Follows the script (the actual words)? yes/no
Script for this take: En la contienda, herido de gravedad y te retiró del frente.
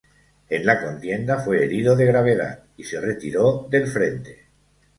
no